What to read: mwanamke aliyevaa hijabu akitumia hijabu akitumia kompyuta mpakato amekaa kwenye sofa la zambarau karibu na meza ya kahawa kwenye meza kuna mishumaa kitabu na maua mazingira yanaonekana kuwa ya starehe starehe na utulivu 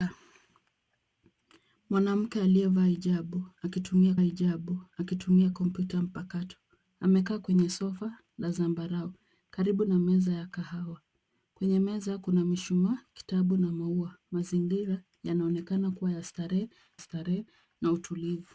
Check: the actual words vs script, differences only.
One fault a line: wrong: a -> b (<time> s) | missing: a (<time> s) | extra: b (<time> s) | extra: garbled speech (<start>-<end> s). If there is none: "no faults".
no faults